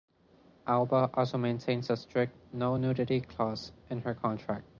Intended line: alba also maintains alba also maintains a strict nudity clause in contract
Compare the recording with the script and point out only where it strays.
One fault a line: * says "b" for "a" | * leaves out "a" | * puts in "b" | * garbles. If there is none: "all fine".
* leaves out "alba also maintains"
* puts in "no"
* puts in "her"